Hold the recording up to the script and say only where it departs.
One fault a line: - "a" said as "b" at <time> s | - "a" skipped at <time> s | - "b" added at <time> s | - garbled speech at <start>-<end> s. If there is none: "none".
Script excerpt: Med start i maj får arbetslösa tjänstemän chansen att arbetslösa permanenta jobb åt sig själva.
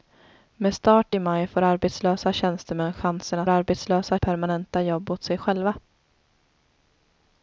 none